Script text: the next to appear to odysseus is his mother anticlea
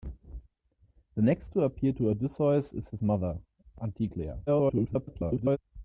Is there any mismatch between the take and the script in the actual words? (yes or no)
yes